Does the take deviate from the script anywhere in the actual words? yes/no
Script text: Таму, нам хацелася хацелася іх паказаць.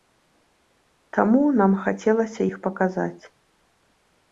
yes